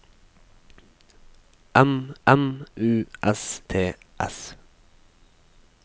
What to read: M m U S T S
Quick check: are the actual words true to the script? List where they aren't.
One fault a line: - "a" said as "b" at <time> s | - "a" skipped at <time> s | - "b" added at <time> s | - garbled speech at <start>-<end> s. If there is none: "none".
none